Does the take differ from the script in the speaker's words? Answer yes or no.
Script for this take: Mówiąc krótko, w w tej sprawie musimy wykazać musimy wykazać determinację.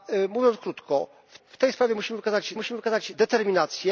no